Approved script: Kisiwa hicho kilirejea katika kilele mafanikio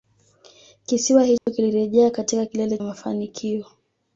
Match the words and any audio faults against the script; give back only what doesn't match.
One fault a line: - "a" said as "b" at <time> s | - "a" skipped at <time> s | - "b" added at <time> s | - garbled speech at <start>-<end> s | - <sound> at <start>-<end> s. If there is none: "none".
- dropout at 1.4-1.5 s